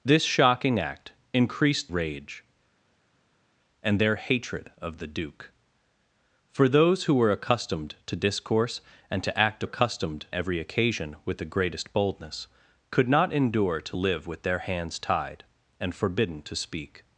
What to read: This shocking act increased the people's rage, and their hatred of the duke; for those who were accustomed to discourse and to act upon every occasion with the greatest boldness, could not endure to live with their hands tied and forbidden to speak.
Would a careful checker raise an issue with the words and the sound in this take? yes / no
yes